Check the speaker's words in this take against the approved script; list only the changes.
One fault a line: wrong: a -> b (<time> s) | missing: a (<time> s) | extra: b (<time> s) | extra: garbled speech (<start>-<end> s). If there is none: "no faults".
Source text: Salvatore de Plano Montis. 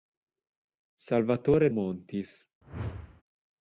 missing: de Plano (1.7 s)